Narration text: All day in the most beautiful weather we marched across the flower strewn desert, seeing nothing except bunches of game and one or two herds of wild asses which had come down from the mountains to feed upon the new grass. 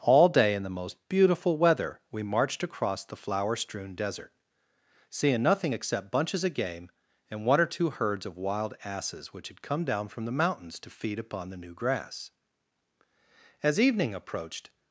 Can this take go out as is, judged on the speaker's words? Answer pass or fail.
fail